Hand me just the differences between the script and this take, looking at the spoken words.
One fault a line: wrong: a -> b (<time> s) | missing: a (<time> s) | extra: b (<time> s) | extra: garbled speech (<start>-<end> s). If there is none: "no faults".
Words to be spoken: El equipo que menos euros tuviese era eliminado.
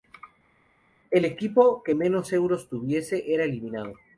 no faults